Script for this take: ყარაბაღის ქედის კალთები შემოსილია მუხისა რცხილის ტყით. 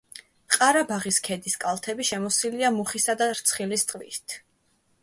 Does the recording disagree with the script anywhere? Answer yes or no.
yes